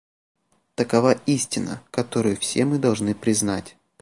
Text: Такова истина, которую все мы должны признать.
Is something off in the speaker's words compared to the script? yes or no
no